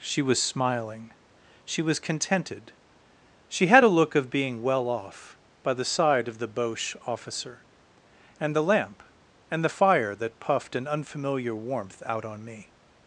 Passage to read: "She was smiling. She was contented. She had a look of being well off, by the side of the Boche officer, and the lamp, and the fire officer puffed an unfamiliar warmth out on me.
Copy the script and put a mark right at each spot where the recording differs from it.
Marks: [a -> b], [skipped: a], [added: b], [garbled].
"She was smiling. She was contented. She had a look of being well off, by the side of the Boche officer, and the lamp, and the fire [officer -> that] puffed an unfamiliar warmth out on me.